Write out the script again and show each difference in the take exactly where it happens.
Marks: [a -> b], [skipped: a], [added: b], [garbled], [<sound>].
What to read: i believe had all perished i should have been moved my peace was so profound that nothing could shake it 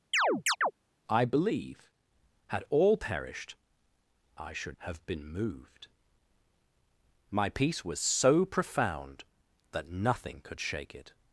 [chirp] i believe had all perished i should have been moved my peace was so profound that nothing could shake it